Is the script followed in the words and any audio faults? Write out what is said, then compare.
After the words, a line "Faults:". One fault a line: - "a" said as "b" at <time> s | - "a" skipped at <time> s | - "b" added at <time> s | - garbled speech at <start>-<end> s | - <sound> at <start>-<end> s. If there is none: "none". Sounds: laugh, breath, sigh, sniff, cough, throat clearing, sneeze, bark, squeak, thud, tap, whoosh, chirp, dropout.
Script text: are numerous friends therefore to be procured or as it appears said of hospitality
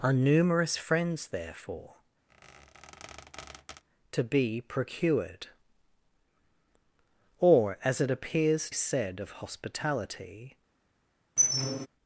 are numerous friends therefore to be procured or as it appears said of hospitality
Faults:
- squeak at 2.3-3.8 s
- squeak at 11.4-11.9 s